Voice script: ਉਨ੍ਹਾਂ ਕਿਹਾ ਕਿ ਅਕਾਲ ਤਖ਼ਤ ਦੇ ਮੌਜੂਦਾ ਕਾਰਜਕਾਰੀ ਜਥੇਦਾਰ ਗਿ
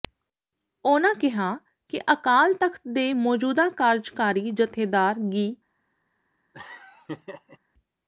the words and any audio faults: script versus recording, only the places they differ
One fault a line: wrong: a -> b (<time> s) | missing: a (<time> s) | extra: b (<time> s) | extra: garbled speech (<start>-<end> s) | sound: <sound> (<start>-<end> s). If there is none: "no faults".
sound: laugh (6.5-7.6 s)